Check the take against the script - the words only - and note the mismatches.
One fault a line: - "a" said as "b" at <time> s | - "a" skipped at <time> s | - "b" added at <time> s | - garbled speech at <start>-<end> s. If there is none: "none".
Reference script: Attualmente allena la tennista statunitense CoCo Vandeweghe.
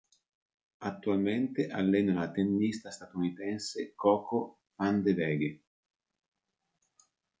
none